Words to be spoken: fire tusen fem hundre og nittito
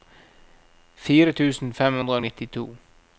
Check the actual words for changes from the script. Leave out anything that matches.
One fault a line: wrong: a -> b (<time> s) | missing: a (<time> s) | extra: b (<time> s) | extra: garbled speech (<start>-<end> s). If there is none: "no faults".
no faults